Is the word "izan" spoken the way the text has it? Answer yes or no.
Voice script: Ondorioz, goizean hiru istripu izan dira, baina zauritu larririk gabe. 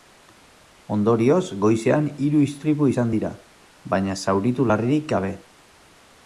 yes